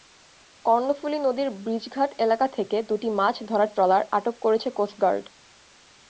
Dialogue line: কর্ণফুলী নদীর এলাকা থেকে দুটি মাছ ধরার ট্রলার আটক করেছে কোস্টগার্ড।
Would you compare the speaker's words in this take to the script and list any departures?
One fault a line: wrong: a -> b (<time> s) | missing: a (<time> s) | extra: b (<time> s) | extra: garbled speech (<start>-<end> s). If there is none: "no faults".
extra: ব্রিজঘাট (1.6 s)